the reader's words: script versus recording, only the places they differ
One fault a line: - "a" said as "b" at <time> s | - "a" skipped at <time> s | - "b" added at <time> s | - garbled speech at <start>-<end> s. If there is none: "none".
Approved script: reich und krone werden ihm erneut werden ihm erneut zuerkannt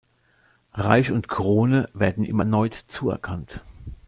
- "werden ihm erneut" skipped at 2.7 s